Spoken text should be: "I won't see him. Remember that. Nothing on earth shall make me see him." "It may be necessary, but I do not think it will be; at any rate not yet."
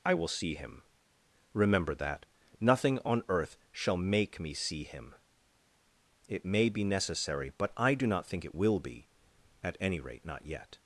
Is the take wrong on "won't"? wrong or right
wrong